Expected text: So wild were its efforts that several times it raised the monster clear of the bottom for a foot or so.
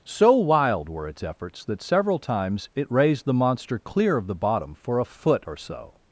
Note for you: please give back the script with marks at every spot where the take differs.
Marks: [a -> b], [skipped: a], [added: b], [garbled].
So wild were its efforts that several times it raised the monster clear of the bottom for a foot or so.